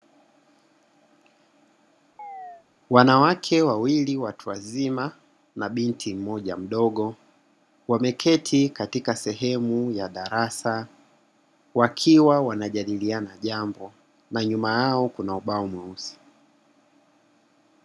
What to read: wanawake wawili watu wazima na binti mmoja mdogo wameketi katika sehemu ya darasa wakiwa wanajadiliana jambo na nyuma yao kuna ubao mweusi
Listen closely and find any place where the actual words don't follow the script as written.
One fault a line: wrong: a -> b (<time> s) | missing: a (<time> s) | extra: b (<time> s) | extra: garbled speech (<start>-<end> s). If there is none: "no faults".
no faults